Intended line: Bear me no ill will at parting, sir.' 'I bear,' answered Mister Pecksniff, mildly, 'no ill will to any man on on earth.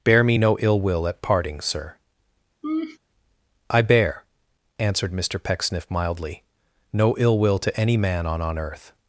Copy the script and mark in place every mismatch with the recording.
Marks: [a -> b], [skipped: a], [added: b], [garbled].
Bear me no ill will at parting, sir.' 'I bear,' answered Mister Pecksniff, mildly, 'no ill will to any man on on earth.